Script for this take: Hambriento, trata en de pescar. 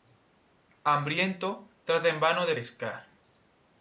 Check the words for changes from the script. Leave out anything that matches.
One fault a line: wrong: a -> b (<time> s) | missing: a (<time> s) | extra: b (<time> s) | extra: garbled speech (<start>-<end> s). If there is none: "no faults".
extra: vano (2.2 s)